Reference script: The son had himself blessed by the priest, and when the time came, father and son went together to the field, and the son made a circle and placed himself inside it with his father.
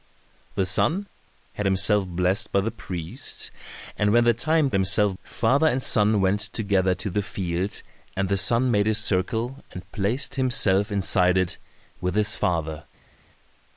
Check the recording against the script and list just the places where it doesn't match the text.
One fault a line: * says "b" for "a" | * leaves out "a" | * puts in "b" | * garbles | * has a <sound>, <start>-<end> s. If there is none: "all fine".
* says "himself" for "came"